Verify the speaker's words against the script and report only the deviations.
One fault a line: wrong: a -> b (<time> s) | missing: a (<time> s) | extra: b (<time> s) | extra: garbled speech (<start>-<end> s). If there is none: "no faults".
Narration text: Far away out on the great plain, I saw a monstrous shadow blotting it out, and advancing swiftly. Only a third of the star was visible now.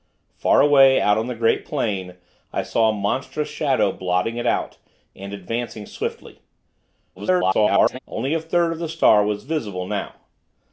extra: garbled speech (7.2-8.0 s)